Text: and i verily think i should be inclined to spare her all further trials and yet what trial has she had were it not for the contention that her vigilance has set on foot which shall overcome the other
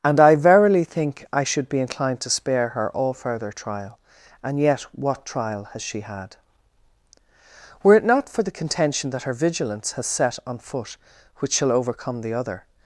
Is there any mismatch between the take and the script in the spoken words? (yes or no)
yes